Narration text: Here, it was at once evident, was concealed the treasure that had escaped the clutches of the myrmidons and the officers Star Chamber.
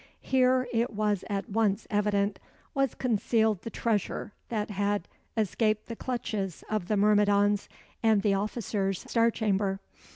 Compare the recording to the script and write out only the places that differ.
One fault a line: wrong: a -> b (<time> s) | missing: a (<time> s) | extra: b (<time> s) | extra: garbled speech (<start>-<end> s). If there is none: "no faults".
no faults